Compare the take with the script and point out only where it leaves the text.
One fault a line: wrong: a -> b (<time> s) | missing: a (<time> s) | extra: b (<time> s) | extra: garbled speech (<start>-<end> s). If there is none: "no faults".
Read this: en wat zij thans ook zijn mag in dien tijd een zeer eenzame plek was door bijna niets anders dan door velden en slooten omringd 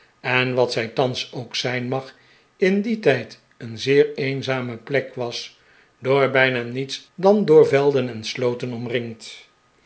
missing: anders (7.0 s)